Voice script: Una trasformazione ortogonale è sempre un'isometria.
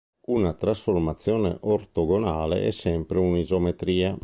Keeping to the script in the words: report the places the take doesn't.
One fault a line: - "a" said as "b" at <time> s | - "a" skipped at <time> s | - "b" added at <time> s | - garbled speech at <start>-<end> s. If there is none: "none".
none